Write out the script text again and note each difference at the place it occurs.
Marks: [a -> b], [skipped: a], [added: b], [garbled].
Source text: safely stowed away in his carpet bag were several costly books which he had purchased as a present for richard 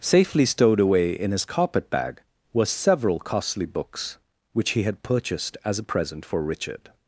safely stowed away in his carpet bag were several costly books which he had purchased as a present for richard